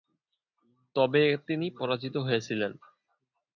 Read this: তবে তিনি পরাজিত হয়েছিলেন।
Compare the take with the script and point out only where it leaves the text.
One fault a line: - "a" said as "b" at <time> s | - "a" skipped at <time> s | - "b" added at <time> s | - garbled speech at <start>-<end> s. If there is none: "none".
none